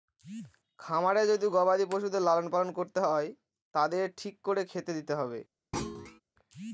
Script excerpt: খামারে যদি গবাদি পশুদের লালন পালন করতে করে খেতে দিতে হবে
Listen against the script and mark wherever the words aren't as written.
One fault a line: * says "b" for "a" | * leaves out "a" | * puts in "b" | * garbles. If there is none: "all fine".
* puts in "হয় তাদের ঠিক"